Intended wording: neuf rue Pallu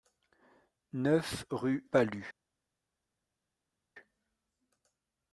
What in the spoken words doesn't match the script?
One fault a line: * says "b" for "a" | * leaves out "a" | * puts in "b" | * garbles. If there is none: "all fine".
all fine